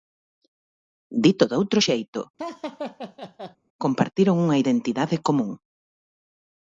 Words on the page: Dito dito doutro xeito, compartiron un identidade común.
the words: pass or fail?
fail